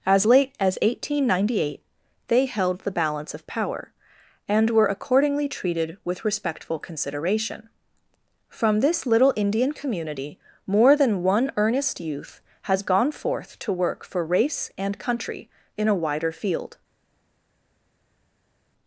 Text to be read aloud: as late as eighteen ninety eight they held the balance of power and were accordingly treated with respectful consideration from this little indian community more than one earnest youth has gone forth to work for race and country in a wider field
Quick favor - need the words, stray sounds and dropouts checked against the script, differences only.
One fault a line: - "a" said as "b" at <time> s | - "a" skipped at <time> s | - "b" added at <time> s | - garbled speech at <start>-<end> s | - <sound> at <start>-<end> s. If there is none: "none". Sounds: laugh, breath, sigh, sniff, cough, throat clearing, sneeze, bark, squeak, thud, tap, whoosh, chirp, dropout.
none